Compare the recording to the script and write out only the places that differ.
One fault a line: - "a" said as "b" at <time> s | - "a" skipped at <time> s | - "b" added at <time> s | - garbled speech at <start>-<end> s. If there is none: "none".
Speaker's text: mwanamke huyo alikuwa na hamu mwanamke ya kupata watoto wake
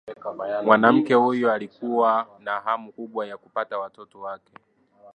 - "mwanamke" said as "kubwa" at 2.9 s